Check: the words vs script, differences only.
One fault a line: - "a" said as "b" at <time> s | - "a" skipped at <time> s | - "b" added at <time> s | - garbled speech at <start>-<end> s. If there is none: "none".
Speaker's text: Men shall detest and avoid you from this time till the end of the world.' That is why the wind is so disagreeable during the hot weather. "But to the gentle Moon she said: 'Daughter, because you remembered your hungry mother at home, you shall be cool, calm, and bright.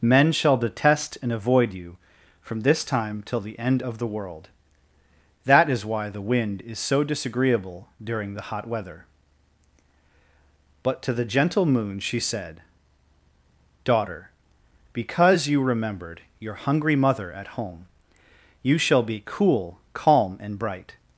none